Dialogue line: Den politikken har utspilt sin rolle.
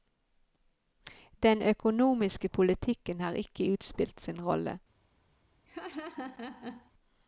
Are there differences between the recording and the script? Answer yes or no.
yes